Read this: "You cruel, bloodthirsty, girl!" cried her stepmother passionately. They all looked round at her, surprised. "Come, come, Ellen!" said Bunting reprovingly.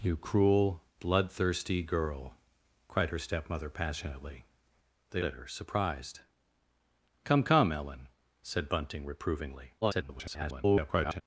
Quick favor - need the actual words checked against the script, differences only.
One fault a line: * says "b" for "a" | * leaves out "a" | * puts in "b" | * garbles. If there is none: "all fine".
* leaves out "all looked round"
* garbles